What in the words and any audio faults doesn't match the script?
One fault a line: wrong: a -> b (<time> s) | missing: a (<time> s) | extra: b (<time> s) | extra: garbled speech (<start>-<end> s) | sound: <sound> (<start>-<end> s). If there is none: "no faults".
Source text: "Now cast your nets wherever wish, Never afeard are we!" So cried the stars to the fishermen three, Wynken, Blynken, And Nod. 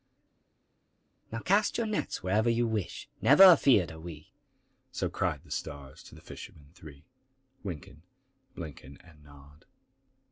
extra: you (2.5 s)